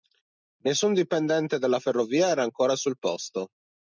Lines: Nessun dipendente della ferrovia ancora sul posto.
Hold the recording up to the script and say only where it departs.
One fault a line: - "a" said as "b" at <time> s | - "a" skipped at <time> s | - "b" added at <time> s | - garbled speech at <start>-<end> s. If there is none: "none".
- "era" added at 2.3 s